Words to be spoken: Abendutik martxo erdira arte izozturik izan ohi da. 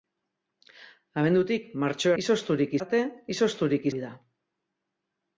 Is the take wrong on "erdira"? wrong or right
wrong